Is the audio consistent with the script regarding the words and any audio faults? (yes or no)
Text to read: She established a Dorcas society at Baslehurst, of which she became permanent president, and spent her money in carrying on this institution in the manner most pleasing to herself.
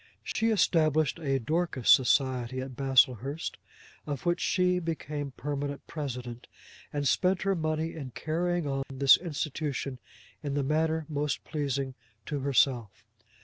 no